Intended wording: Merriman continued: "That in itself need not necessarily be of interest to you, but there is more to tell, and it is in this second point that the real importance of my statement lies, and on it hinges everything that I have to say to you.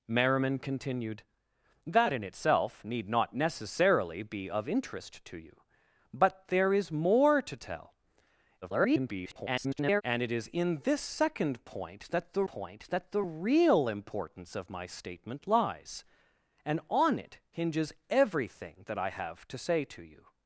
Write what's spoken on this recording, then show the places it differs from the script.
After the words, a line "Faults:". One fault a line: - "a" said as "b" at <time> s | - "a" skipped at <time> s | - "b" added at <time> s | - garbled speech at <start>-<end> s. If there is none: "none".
Merriman continued: "That in itself need not necessarily be of interest to you, but there is more to tell, [garbled] and it is in this second point that the point that the real importance of my statement lies, and on it hinges everything that I have to say to you.
Faults:
- garbled speech at 8.6-10.0 s
- "point that the" added at 12.4 s